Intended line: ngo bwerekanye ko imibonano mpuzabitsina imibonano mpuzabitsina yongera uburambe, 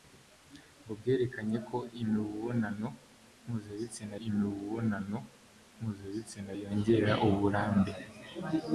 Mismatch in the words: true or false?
false